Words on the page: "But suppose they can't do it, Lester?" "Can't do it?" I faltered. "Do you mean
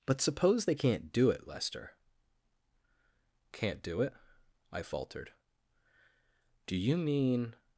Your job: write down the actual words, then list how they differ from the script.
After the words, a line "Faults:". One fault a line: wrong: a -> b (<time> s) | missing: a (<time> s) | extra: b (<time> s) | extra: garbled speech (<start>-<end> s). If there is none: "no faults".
"But suppose they can't do it, Lester?" "Can't do it?" I faltered. "Do you mean
Faults:
no faults